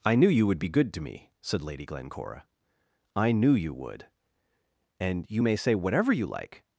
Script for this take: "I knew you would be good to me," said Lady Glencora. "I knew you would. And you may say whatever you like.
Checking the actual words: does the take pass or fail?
pass